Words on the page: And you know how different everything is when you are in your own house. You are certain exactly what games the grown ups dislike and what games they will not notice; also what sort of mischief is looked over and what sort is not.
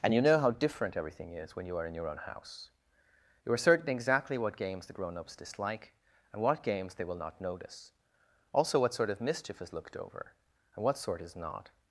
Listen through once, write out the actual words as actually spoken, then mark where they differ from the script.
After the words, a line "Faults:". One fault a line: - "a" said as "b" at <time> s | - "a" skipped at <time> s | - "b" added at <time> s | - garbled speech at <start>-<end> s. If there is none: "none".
And you know how different everything is when you are in your own house. You are certain exactly what games the grown ups dislike and what games they will not notice; also what sort of mischief is looked over and what sort is not.
Faults:
none